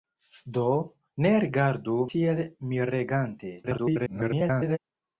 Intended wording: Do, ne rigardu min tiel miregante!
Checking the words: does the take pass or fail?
fail